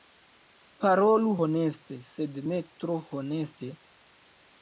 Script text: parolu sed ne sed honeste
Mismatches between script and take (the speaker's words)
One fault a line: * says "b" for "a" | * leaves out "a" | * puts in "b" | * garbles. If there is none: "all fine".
* puts in "honeste"
* says "tro" for "sed"